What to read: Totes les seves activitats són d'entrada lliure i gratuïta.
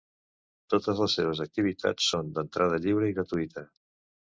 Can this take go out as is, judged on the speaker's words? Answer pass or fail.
pass